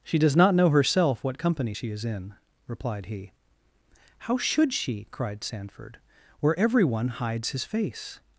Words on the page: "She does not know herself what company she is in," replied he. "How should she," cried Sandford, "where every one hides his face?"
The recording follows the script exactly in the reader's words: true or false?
true